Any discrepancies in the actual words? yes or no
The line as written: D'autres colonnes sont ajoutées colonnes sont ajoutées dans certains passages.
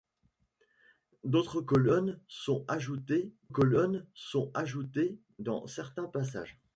no